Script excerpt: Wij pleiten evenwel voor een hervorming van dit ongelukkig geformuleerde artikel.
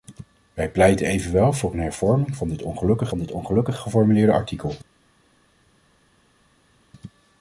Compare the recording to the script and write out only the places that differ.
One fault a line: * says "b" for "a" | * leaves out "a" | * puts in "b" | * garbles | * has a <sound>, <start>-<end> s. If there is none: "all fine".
* puts in "van dit ongelukkig"